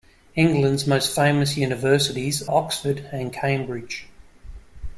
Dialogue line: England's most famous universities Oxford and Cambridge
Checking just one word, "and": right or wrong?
right